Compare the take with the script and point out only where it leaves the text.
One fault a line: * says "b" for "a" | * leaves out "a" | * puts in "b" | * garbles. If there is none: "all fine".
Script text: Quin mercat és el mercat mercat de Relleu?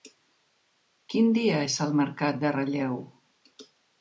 * says "dia" for "mercat"
* leaves out "mercat"